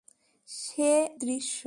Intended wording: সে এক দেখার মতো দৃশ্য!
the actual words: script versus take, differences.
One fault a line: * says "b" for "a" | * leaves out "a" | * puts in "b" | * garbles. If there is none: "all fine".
* leaves out "এক দেখার মতো"